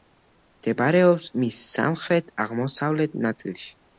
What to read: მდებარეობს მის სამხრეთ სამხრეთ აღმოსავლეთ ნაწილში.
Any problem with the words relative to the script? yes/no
yes